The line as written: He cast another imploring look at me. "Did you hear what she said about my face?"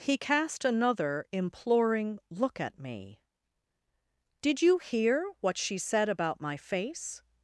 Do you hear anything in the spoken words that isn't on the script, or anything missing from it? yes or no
no